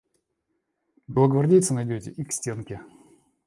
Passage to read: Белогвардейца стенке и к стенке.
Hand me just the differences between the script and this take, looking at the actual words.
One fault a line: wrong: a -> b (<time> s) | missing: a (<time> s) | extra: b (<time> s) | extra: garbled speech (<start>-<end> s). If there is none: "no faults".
wrong: стенке -> найдете (1.7 s)